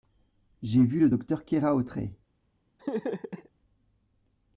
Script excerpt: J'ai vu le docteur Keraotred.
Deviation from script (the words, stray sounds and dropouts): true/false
true